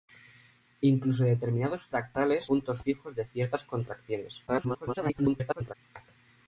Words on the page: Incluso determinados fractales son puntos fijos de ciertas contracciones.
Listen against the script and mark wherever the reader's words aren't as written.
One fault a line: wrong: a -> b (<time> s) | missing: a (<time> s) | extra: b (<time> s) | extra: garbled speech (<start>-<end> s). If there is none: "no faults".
missing: son (2.5 s)
extra: garbled speech (4.5-5.7 s)